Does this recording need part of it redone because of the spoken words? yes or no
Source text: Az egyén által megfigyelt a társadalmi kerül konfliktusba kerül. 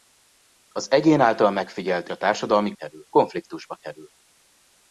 no